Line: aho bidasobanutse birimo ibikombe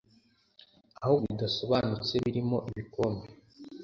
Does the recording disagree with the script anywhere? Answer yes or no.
no